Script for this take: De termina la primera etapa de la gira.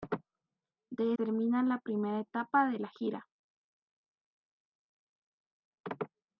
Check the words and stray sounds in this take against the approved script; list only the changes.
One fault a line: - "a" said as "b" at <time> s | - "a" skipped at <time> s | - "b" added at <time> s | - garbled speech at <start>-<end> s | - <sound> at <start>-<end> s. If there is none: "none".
none